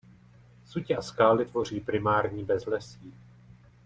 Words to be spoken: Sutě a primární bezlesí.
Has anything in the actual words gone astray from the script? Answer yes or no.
yes